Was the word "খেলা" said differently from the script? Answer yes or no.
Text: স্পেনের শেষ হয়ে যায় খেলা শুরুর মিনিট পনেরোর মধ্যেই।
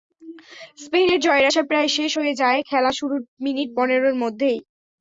no